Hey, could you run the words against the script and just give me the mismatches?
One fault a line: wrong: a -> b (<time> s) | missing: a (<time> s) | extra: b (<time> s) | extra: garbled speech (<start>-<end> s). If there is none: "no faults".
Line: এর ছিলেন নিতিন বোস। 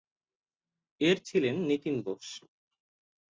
no faults